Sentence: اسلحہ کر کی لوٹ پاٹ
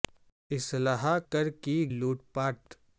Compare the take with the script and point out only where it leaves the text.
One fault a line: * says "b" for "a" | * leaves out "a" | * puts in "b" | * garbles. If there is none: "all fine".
all fine